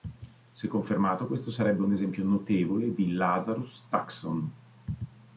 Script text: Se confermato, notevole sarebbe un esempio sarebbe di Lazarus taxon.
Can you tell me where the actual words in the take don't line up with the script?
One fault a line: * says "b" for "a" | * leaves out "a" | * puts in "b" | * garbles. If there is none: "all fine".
* says "questo" for "notevole"
* says "notevole" for "sarebbe"